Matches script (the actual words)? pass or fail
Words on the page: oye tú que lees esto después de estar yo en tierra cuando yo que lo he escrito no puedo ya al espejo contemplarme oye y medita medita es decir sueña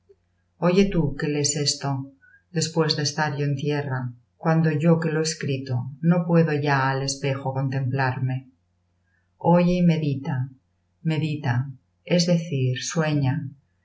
pass